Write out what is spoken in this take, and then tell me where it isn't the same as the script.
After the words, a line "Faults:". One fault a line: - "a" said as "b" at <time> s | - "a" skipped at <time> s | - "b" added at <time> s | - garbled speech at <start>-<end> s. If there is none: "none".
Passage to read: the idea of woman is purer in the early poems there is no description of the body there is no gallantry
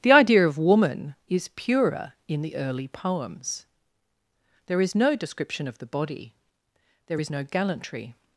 the idea of woman is purer in the early poems there is no description of the body there is no gallantry
Faults:
none